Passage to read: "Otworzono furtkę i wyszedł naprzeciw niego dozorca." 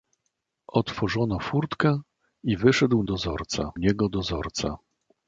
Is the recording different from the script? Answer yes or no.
yes